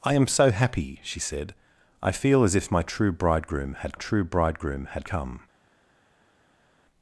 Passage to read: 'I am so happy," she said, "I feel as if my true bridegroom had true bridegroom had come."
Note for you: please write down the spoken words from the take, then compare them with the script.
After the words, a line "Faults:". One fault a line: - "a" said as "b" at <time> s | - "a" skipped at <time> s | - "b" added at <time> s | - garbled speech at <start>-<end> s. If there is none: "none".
'I am so happy," she said, "I feel as if my true bridegroom had true bridegroom had come."
Faults:
none